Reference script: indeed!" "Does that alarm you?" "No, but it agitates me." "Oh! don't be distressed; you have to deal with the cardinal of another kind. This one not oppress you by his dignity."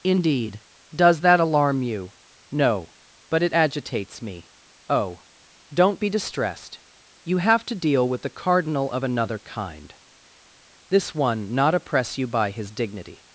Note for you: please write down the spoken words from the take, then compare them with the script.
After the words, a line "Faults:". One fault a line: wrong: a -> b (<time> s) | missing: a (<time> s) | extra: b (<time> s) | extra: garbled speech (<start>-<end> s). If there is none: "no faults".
indeed!" "Does that alarm you?" "No, but it agitates me." "Oh! don't be distressed; you have to deal with the cardinal of another kind. This one not oppress you by his dignity."
Faults:
no faults